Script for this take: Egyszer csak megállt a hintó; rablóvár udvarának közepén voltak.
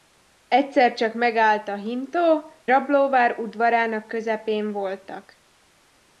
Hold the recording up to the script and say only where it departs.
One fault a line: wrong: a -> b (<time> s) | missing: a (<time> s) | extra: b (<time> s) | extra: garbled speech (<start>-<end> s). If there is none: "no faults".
no faults